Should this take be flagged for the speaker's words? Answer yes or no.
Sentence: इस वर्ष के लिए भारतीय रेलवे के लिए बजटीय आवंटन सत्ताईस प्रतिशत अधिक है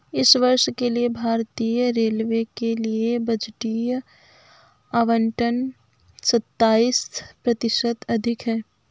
no